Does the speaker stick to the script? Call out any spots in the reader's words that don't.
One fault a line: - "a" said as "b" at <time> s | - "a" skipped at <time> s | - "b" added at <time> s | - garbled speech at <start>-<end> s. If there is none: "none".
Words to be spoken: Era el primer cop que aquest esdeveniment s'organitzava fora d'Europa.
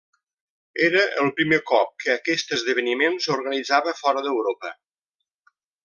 none